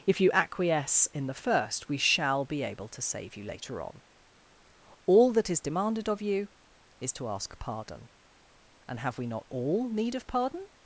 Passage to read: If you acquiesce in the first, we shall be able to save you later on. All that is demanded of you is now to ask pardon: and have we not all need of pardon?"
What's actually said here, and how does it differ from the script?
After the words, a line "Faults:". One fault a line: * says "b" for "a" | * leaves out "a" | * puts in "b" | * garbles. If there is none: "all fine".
If you acquiesce in the first, we shall be able to save you later on. All that is demanded of you is to ask pardon: and have we not all need of pardon?"
Faults:
* leaves out "now"